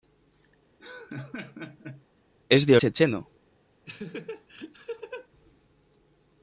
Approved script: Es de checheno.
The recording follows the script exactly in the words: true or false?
true